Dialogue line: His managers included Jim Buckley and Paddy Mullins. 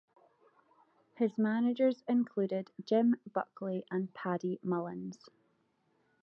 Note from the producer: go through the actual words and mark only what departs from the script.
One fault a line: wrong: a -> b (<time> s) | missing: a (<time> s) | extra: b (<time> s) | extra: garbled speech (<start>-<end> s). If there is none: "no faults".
no faults